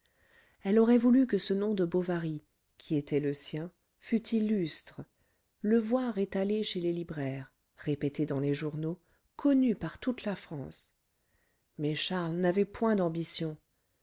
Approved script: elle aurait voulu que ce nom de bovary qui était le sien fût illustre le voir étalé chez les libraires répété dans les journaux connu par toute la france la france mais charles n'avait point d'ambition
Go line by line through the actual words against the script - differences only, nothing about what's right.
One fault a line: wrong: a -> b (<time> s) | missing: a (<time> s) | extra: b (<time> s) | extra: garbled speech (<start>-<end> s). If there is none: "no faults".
missing: la france (11.0 s)